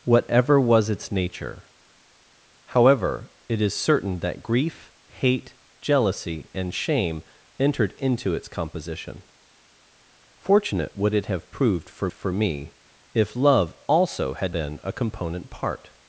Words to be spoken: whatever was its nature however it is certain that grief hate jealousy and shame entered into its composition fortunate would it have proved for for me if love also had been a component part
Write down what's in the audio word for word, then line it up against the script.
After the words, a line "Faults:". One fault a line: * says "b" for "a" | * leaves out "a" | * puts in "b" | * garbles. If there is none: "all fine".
whatever was its nature however it is certain that grief hate jealousy and shame entered into its composition fortunate would it have proved for for me if love also had been a component part
Faults:
all fine